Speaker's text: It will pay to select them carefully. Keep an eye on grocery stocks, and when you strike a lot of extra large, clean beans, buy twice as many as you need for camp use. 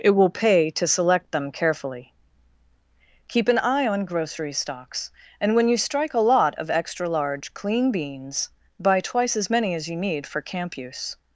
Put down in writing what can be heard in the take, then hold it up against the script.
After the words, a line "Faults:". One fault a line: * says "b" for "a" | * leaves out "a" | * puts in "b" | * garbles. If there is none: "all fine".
It will pay to select them carefully. Keep an eye on grocery stocks, and when you strike a lot of extra large, clean beans, buy twice as many as you need for camp use.
Faults:
all fine